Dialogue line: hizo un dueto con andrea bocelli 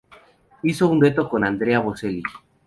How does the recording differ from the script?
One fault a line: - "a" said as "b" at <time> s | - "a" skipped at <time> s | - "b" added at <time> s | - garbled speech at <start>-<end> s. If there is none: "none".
none